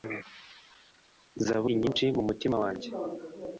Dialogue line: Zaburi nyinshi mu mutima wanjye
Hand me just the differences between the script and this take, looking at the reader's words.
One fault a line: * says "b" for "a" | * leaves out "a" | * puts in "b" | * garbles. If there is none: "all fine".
all fine